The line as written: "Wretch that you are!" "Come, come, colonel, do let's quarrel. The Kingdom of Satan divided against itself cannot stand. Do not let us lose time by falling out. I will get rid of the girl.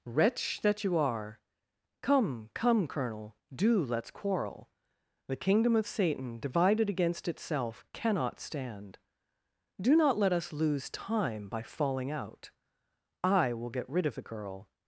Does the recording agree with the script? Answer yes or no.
yes